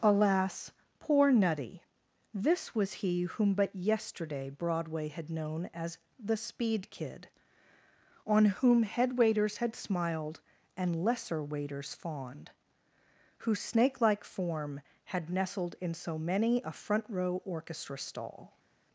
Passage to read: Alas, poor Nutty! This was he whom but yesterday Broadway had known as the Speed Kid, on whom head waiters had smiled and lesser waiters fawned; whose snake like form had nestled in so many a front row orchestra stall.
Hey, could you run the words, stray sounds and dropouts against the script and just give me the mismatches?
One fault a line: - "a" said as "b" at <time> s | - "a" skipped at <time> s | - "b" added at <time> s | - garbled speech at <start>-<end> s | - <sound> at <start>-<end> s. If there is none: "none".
none